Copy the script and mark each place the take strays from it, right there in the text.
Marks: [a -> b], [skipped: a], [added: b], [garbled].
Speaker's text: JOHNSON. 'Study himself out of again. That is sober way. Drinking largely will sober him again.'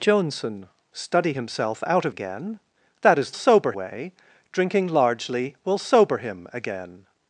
JOHNSON. 'Study himself out of again. That is sober way. Drinking largely will sober him again.'